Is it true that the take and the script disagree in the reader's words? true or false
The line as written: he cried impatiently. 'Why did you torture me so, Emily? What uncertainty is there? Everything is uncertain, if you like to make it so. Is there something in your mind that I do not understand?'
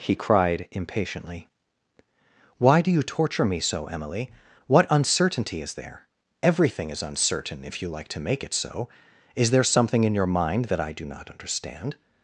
true